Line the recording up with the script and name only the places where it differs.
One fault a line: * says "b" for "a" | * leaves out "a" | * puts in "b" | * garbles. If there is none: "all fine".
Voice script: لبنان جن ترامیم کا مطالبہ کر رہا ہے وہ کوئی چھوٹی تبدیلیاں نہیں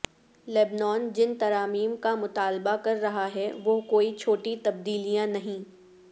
all fine